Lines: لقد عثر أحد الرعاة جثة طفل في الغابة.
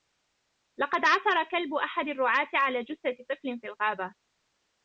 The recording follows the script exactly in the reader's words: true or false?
false